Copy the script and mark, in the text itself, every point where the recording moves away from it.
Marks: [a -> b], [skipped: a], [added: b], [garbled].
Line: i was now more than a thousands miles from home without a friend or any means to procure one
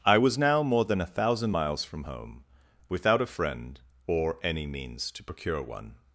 i was now more than a [thousands -> thousand] miles from home without a friend or any means to procure one